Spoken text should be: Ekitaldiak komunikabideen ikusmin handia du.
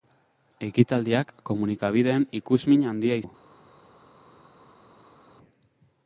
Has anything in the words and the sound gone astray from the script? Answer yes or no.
no